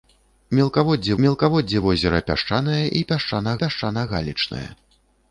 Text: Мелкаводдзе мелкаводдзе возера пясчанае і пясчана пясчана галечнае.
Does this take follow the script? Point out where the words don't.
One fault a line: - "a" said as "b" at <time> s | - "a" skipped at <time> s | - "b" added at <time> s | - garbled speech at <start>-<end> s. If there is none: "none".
none